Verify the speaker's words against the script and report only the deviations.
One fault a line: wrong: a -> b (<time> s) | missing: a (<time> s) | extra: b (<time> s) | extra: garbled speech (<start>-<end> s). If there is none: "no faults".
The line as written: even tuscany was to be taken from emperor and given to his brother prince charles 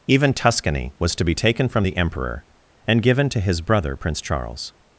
extra: the (1.8 s)